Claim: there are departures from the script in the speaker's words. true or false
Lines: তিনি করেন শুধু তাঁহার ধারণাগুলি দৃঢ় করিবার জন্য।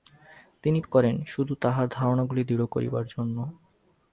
false